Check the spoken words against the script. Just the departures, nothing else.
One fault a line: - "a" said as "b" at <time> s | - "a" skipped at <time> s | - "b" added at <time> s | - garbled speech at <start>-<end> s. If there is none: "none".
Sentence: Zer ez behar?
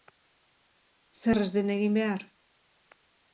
- "den egin" added at 1.6 s